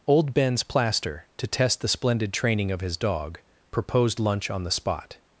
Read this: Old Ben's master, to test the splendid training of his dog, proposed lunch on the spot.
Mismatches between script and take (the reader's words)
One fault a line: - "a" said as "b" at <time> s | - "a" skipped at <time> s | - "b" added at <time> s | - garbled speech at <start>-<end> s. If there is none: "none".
- "master" said as "plaster" at 0.6 s